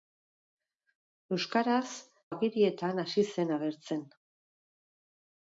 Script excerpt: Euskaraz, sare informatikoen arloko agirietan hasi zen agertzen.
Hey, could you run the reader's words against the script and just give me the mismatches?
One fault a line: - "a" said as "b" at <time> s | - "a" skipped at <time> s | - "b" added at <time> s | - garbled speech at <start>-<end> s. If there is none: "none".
- "sare informatikoen arloko" skipped at 1.9 s